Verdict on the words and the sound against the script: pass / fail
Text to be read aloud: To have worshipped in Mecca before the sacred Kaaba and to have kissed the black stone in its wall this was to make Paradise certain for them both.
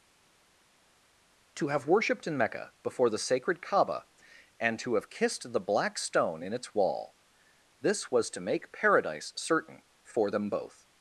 pass